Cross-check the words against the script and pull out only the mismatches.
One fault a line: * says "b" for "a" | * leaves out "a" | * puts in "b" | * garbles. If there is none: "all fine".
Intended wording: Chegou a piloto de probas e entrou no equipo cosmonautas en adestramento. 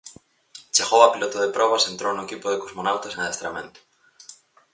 * puts in "de"